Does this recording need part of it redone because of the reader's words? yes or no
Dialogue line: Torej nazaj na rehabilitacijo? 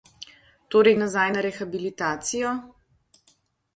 no